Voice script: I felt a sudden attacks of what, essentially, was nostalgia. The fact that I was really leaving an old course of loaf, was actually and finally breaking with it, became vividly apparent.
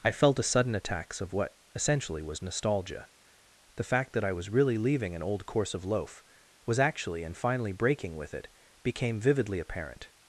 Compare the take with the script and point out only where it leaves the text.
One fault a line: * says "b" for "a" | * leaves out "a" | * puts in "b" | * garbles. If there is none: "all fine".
all fine